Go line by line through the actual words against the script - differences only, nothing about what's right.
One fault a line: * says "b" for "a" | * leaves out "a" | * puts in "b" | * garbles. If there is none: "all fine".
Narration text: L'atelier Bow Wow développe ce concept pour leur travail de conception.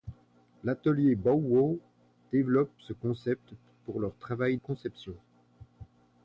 * leaves out "de"